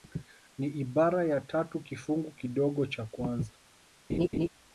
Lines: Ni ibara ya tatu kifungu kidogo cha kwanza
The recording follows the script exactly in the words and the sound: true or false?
false